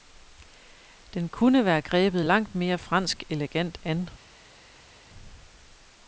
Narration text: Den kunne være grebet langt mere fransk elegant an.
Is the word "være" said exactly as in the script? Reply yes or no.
yes